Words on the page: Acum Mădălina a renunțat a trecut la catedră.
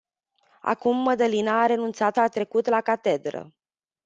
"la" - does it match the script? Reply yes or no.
yes